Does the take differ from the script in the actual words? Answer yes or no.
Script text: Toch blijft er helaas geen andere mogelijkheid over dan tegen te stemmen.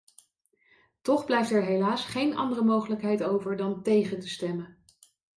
no